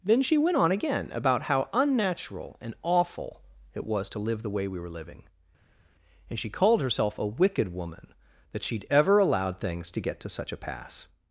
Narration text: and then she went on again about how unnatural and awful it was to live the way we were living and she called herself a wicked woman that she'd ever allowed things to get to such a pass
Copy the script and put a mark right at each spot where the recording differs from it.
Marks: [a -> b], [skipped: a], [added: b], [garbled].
[skipped: and] then she went on again about how unnatural and awful it was to live the way we were living and she called herself a wicked woman that she'd ever allowed things to get to such a pass